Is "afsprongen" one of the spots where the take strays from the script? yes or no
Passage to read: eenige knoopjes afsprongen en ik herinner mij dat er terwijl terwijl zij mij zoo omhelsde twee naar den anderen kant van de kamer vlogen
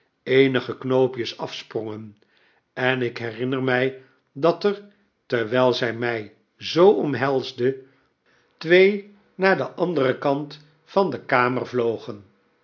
no